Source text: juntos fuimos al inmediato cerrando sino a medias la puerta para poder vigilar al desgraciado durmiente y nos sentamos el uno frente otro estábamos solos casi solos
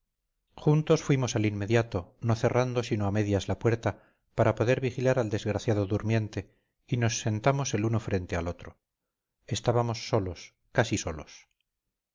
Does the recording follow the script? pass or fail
fail